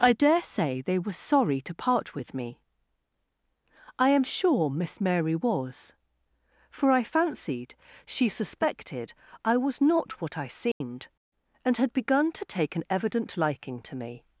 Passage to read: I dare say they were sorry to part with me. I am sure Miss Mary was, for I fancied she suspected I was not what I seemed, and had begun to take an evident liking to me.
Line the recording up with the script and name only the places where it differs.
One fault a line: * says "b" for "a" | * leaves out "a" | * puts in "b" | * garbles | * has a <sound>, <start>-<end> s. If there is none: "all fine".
* has a dropout, 10.7-10.8 s